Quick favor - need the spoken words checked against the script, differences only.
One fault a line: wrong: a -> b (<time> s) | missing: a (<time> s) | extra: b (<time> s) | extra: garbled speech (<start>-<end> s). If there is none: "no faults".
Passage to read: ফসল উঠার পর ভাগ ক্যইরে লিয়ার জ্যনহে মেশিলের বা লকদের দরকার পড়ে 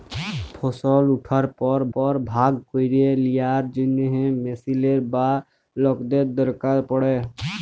extra: পর (1.9 s)